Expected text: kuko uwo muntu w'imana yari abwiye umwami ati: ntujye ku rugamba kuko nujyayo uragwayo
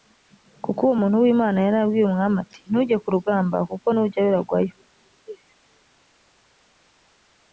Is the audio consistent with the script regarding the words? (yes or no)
yes